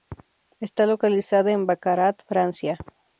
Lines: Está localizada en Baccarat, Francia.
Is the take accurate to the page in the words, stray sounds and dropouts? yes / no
yes